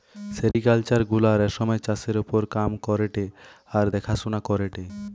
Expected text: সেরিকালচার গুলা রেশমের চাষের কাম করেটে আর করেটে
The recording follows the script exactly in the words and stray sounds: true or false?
false